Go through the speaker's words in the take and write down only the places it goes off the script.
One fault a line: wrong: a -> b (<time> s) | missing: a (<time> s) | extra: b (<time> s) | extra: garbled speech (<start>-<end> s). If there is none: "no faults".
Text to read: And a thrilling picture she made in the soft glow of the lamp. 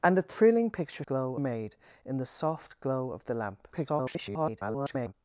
wrong: she -> glow (1.1 s)
extra: garbled speech (3.7-5.1 s)